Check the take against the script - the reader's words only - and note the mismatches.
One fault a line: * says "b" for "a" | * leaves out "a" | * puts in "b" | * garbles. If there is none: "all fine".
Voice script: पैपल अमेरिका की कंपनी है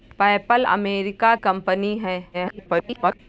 * leaves out "की"
* garbles